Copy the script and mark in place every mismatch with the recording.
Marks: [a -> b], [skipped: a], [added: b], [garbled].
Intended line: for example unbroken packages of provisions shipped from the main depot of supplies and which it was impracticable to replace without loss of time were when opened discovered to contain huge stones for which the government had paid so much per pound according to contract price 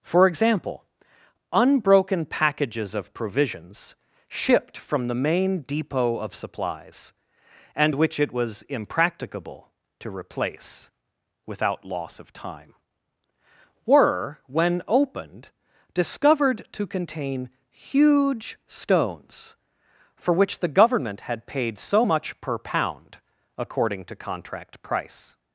for example unbroken packages of provisions shipped from the main depot of supplies and which it was impracticable to replace without loss of time were when opened discovered to contain huge stones for which the government had paid so much per pound according to contract price